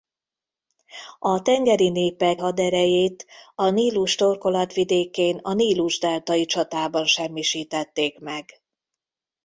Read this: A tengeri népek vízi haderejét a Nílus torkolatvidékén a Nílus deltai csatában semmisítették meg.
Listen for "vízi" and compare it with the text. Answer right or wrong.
wrong